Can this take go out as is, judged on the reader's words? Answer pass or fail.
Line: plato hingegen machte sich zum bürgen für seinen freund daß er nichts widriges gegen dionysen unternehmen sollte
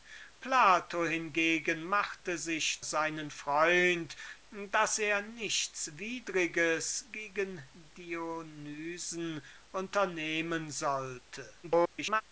fail